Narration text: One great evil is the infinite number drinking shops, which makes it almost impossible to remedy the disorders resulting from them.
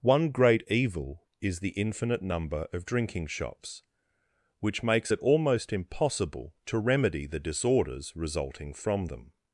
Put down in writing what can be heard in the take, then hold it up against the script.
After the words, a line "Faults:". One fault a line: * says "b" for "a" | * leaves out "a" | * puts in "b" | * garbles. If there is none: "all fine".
One great evil is the infinite number of drinking shops, which makes it almost impossible to remedy the disorders resulting from them.
Faults:
* puts in "of"